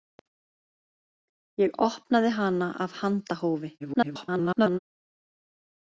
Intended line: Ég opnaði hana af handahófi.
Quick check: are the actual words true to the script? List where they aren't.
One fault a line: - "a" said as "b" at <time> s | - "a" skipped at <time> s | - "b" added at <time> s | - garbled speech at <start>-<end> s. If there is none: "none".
- garbled speech at 3.8-4.8 s